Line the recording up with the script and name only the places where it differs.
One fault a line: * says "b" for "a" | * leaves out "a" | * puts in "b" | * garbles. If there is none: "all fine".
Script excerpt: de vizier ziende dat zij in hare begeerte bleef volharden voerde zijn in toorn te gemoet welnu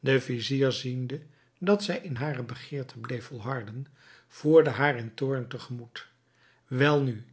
* says "haar" for "zijn"